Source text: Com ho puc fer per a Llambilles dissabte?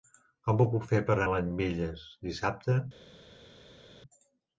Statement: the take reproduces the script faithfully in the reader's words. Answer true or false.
true